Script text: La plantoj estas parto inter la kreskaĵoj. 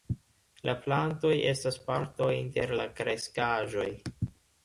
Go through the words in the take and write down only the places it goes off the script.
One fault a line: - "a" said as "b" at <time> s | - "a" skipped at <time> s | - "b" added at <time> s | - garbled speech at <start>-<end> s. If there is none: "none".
none